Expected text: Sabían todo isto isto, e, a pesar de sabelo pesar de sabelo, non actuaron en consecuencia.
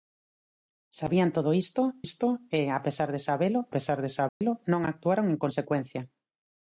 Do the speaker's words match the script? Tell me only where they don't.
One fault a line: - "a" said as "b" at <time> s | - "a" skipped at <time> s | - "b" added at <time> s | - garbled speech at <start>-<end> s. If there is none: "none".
none